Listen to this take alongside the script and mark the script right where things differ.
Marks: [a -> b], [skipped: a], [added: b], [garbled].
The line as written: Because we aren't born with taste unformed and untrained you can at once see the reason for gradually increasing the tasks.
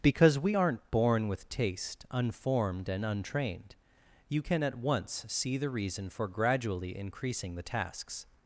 Because we aren't born with taste unformed and untrained you can at once see the reason for gradually increasing the tasks.